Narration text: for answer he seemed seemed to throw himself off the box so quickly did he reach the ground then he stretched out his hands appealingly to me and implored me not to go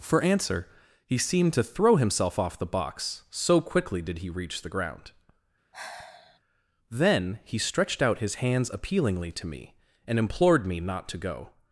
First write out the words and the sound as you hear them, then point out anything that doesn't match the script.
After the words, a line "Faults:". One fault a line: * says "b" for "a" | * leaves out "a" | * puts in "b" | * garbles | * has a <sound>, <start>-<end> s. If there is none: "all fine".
for answer he seemed to throw himself off the box so quickly did he reach the ground then he stretched out his hands appealingly to me and implored me not to go
Faults:
* leaves out "seemed"
* has a sigh, 5.7-6.4 s